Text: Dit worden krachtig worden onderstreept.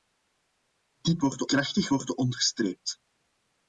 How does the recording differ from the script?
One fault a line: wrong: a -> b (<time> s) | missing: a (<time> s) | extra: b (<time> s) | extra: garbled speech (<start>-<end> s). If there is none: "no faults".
no faults